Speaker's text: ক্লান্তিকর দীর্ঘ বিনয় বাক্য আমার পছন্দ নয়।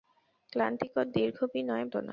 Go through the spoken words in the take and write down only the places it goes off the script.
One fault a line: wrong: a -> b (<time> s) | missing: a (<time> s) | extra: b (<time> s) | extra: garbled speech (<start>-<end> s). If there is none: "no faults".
missing: বাক্য আমার পছন্দ (1.9 s)